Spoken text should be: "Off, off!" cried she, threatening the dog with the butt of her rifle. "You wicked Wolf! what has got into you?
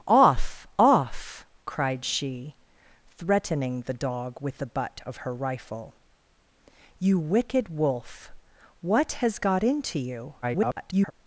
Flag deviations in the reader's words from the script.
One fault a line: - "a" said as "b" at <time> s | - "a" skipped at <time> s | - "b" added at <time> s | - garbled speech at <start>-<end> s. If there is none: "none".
- garbled speech at 10.4-11.1 s